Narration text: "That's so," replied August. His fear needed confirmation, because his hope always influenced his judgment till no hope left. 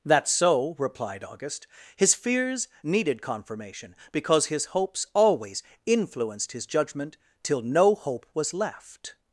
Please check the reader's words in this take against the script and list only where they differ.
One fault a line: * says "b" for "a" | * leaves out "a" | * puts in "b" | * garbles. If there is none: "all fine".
* says "fears" for "fear"
* says "hopes" for "hope"
* puts in "was"